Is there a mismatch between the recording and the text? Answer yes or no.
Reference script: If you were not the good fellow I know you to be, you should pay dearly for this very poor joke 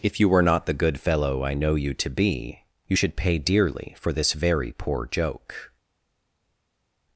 no